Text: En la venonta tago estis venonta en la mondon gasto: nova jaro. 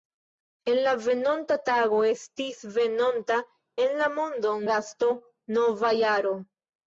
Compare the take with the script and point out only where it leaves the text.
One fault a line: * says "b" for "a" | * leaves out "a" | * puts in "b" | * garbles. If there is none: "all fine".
all fine